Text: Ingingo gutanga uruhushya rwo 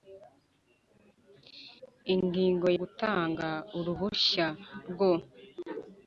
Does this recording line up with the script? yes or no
yes